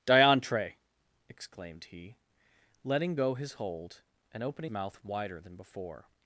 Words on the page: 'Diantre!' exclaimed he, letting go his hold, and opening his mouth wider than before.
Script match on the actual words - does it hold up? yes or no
no